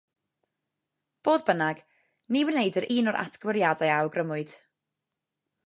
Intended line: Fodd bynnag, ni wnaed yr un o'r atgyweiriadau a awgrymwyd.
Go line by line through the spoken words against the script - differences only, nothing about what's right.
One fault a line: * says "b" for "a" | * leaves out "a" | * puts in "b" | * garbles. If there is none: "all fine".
all fine